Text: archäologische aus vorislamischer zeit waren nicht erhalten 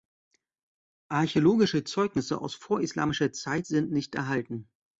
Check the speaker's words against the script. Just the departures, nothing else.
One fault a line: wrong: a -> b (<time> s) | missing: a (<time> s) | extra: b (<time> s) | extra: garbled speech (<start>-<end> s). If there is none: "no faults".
extra: zeugnisse (1.8 s)
wrong: waren -> sind (3.6 s)